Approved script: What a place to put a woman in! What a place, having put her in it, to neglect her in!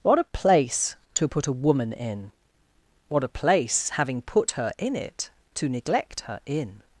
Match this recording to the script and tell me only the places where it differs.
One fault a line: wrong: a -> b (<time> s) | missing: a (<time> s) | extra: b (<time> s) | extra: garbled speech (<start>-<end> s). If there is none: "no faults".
no faults